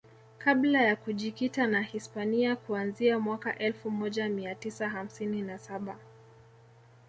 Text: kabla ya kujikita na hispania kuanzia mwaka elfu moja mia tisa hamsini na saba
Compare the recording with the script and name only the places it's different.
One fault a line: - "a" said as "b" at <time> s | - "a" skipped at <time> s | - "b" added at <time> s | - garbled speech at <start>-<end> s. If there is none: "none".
none